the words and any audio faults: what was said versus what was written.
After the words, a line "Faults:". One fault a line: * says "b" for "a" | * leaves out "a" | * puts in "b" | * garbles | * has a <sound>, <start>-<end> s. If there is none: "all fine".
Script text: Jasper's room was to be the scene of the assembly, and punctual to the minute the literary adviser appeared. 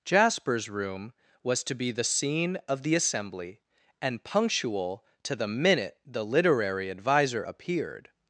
Jasper's room was to be the scene of the assembly, and punctual to the minute the literary adviser appeared.
Faults:
all fine